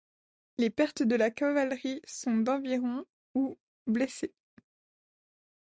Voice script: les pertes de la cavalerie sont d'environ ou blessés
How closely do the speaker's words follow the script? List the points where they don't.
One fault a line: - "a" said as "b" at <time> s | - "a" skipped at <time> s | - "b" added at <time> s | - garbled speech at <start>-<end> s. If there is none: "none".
none